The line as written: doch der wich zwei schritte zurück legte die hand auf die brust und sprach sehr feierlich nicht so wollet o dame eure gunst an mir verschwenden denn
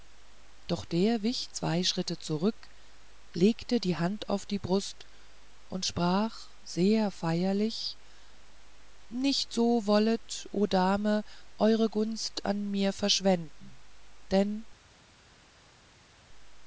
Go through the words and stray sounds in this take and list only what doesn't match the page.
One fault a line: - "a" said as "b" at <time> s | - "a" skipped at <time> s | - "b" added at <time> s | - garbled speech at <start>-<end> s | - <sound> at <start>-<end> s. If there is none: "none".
none